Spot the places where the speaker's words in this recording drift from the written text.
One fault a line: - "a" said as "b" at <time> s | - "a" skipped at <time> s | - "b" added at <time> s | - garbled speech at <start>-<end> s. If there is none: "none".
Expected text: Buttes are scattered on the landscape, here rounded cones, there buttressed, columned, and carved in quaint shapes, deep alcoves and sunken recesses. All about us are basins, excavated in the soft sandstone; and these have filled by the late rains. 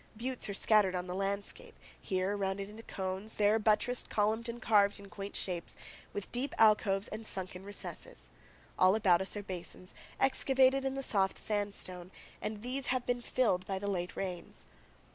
- "into" added at 2.7 s
- "with" added at 6.1 s
- "been" added at 13.1 s